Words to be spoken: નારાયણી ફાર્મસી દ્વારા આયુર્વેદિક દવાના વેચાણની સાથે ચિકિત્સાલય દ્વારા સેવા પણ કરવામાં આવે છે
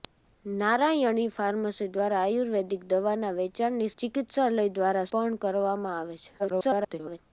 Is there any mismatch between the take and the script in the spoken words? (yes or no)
yes